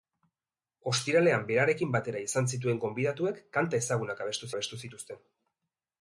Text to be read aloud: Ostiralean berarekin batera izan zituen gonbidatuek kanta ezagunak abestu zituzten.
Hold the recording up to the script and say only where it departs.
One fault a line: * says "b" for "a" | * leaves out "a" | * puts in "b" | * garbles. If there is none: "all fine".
* puts in "abestu"